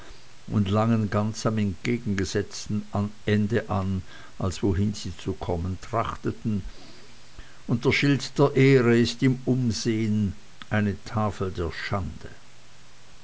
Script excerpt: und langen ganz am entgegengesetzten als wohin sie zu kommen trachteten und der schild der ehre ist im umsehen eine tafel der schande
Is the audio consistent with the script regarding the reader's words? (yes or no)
no